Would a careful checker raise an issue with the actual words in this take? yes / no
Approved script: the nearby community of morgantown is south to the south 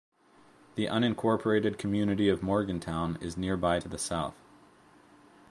yes